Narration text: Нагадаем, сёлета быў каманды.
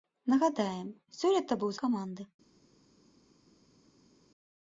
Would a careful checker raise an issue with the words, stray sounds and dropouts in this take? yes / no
no